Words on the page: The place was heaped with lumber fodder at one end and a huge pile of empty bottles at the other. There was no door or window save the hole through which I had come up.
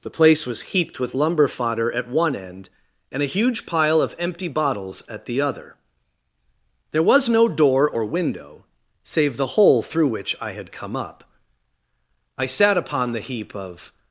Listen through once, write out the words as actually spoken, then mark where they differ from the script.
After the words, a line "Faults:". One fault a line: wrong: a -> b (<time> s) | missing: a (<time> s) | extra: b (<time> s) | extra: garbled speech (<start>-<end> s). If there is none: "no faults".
The place was heaped with lumber fodder at one end and a huge pile of empty bottles at the other. There was no door or window save the hole through which I had come up. I sat upon the heap of
Faults:
extra: I sat upon the heap of (12.4 s)